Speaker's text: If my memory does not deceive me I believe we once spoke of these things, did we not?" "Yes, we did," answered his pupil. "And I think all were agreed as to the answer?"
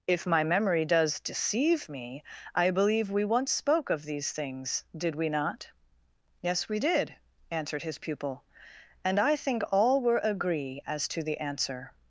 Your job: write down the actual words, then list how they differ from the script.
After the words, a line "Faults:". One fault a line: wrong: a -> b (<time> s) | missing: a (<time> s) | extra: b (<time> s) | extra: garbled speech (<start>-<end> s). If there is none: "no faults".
If my memory does deceive me I believe we once spoke of these things, did we not?" "Yes, we did," answered his pupil. "And I think all were agree as to the answer?"
Faults:
missing: not (1.2 s)
wrong: agreed -> agree (10.2 s)